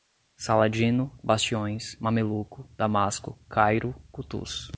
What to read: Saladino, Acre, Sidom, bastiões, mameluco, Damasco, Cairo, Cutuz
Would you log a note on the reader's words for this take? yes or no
yes